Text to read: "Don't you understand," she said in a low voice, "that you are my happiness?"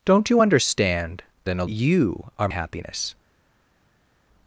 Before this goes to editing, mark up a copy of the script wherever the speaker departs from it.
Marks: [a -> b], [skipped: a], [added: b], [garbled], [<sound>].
"Don't you understand," [skipped: she said] in a [skipped: low voice, "that] you are [skipped: my] happiness?"